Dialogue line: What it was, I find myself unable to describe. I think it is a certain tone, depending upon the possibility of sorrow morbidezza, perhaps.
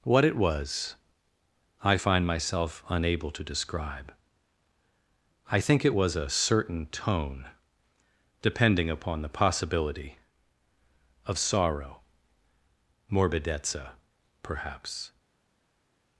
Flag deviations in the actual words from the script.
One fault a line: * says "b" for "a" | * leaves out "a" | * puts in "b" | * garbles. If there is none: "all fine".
* says "was" for "is"